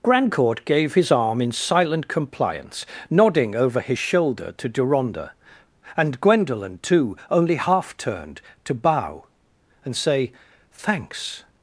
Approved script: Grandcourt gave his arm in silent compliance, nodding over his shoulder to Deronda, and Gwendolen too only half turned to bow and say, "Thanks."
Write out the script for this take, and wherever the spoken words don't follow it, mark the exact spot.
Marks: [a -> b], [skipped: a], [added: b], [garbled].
Grandcourt gave his arm in silent compliance, nodding over his shoulder to Deronda, and Gwendolen too only half turned to bow and say, "Thanks."